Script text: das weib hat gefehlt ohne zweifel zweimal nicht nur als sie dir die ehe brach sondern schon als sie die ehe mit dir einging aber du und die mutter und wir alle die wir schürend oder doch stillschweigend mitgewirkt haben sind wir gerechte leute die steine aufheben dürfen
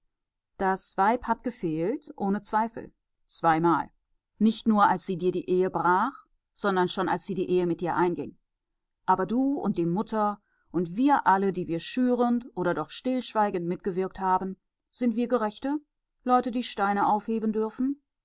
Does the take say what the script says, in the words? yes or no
yes